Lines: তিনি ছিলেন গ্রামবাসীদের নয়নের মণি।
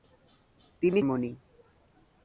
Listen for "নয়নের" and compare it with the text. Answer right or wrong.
wrong